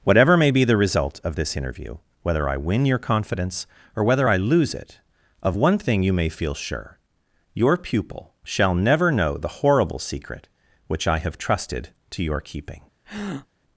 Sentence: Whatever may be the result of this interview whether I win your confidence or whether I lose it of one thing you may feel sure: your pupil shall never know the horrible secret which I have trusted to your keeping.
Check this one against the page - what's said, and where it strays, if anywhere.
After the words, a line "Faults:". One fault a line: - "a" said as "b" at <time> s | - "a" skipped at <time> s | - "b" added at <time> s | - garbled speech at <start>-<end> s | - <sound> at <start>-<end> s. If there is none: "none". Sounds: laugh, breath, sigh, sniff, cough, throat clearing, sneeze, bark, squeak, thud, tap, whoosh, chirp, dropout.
Whatever may be the result of this interview whether I win your confidence or whether I lose it of one thing you may feel sure: your pupil shall never know the horrible secret which I have trusted to your keeping.
Faults:
- breath at 13.0-13.5 s